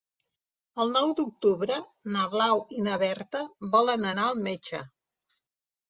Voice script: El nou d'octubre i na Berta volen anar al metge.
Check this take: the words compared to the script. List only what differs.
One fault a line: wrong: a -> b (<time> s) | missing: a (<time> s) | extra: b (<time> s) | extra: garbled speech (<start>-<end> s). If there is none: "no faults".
extra: na Blau (2.1 s)